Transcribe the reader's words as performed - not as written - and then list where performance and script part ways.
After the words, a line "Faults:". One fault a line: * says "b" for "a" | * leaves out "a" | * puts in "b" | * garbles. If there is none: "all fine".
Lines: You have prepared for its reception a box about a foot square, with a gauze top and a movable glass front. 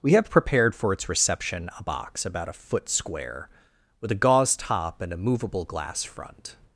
We have prepared for its reception a box about a foot square, with a gauze top and a movable glass front.
Faults:
* says "We" for "You"